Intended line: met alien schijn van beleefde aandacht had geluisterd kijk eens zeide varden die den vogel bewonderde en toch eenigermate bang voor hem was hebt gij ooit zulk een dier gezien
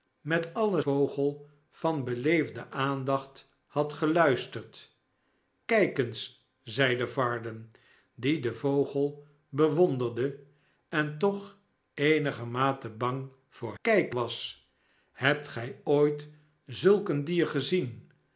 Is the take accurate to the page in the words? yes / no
no